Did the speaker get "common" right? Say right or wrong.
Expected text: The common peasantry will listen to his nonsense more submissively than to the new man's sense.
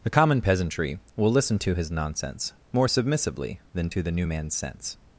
right